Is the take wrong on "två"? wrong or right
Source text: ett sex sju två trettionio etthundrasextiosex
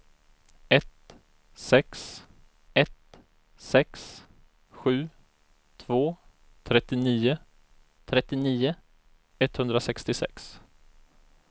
right